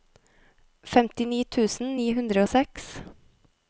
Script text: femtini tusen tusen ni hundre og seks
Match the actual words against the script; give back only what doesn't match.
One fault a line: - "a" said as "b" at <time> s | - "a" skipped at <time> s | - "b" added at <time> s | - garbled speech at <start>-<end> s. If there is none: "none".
- "tusen" skipped at 1.9 s